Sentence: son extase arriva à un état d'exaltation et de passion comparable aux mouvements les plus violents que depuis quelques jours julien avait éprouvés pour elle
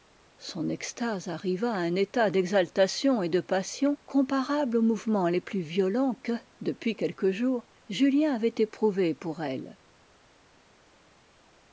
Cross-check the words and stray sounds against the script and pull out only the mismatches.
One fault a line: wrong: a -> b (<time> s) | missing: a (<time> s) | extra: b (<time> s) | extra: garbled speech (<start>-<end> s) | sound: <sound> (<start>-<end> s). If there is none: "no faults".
no faults